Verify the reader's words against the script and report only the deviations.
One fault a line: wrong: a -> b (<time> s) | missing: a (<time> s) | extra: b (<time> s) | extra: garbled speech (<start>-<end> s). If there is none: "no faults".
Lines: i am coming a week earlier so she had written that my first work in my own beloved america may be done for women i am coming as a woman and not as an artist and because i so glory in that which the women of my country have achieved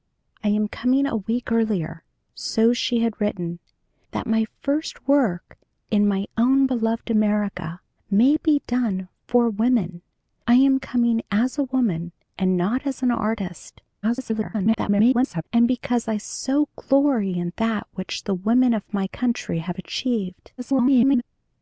extra: garbled speech (14.0-15.4 s)
extra: garbled speech (20.6-21.2 s)